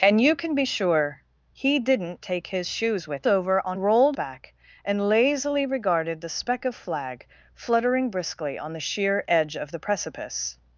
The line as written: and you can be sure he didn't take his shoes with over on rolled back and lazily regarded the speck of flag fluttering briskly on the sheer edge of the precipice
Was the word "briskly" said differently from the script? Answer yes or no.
no